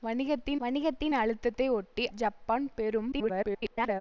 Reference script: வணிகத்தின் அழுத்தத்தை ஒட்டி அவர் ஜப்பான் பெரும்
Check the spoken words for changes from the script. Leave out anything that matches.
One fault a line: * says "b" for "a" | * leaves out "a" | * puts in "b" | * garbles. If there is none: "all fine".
* puts in "வணிகத்தின்"
* leaves out "அவர்"
* garbles